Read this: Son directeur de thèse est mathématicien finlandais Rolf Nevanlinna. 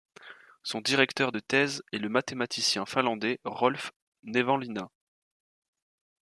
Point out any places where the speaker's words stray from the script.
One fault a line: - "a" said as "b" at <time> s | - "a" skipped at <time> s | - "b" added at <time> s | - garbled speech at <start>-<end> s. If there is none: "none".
- "le" added at 2.0 s